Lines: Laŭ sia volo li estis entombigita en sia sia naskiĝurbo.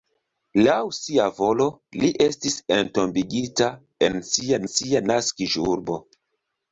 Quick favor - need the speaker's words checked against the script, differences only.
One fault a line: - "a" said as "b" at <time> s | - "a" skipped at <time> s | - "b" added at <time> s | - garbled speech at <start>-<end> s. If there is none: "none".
none